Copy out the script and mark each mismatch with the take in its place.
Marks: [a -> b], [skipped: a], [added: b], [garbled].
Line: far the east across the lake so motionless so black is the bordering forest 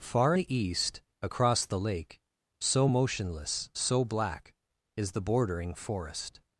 far the east across the lake so motionless so black is the bordering forest